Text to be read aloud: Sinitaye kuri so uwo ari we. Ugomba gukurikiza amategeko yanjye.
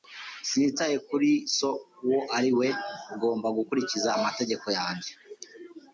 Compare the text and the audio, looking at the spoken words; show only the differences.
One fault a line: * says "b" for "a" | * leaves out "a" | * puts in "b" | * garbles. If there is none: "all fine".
all fine